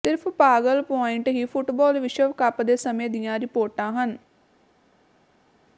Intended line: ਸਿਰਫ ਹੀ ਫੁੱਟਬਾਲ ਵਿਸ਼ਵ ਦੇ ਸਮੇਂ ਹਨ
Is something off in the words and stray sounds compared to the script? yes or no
yes